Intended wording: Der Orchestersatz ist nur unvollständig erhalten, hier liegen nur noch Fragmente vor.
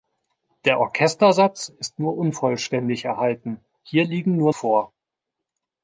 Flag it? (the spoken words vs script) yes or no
yes